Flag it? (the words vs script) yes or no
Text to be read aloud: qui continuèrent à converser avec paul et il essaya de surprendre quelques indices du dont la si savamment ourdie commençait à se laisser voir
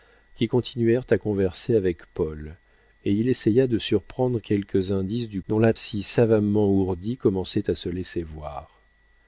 no